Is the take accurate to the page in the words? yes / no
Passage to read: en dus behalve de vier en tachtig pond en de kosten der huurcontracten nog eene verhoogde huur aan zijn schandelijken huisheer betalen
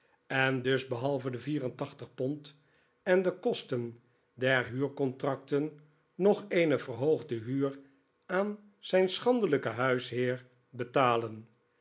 yes